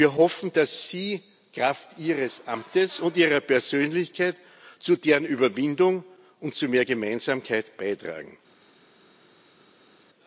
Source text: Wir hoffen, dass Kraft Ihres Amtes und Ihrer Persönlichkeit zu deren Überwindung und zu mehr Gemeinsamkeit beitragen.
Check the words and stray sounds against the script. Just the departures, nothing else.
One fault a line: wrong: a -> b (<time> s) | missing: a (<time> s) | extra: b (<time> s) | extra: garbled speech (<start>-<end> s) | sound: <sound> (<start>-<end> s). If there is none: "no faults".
extra: Sie (0.9 s)